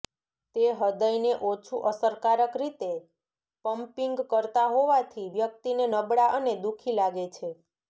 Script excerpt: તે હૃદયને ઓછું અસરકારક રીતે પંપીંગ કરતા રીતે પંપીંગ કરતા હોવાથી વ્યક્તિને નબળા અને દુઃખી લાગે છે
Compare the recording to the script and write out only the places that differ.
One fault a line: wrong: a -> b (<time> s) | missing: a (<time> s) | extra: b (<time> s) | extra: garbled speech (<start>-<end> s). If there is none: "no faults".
missing: રીતે પંપીંગ કરતા (4.7 s)